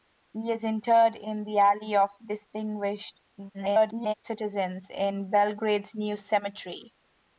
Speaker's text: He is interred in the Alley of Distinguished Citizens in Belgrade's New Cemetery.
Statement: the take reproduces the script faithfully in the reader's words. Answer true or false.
false